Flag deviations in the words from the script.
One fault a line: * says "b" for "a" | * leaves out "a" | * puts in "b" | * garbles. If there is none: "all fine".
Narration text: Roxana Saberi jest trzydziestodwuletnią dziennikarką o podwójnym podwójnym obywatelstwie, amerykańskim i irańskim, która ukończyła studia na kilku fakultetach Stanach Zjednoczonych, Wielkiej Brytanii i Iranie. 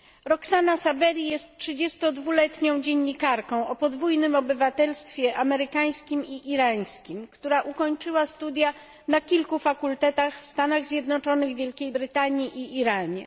* leaves out "podwójnym"
* puts in "w"